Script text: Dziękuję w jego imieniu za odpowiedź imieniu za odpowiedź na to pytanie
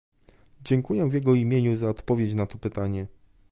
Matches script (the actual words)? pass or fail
fail